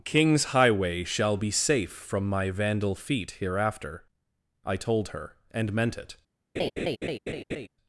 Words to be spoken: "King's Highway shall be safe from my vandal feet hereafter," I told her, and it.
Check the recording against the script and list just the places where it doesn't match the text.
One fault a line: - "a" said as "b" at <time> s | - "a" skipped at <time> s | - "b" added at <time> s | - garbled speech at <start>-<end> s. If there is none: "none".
- "meant" added at 5.7 s